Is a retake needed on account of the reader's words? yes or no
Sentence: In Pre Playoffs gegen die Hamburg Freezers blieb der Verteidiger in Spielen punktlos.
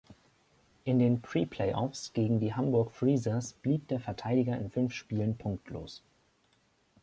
yes